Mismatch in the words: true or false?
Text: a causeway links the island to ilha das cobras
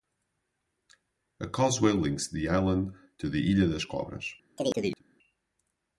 true